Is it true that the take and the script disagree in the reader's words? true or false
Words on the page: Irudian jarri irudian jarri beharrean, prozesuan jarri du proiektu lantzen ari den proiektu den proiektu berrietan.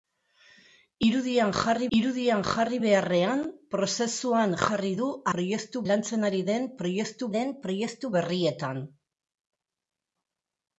false